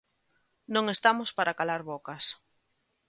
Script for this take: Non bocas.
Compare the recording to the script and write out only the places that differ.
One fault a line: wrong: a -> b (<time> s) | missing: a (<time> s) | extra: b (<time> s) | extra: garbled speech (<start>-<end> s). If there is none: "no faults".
extra: estamos para calar (0.9 s)